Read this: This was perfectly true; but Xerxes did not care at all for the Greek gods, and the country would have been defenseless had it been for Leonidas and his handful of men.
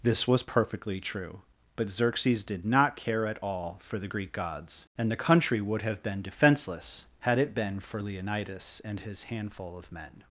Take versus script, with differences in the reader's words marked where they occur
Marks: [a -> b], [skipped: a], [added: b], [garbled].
This was perfectly true; but Xerxes did not care at all for the Greek gods, and the country would have been defenseless had it been for Leonidas and his handful of men.